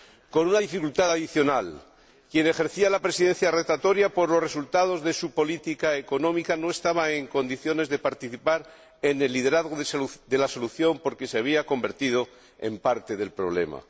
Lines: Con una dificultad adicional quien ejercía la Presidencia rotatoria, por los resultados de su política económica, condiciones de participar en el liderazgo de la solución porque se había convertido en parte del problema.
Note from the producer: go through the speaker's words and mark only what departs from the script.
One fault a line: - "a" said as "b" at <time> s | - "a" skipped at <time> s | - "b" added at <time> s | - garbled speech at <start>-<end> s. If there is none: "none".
- "no estaba en" added at 6.6 s